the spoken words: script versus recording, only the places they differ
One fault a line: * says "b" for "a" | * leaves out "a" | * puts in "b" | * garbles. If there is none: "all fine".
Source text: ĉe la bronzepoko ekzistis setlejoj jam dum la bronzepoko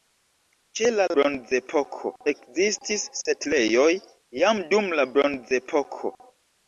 all fine